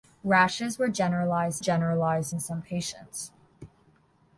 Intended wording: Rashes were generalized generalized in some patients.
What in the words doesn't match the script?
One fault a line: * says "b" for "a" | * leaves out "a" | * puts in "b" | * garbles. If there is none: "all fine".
all fine